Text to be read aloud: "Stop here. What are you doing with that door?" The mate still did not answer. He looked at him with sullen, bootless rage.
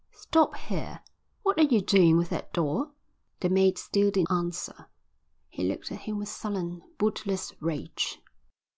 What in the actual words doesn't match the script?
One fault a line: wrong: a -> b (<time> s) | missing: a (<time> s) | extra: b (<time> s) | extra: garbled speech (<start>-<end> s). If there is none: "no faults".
missing: not (4.2 s)